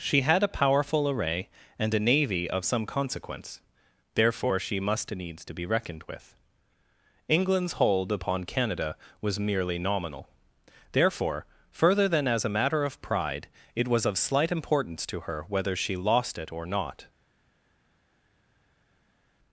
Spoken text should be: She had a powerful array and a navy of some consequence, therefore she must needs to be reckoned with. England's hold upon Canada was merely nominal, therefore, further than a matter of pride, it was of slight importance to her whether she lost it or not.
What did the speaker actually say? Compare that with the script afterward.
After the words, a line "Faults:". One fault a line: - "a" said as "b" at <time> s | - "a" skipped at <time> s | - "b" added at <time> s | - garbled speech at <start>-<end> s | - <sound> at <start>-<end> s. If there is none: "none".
She had a powerful array and a navy of some consequence, therefore she must needs to be reckoned with. England's hold upon Canada was merely nominal, therefore, further than as a matter of pride, it was of slight importance to her whether she lost it or not.
Faults:
- "as" added at 12.3 s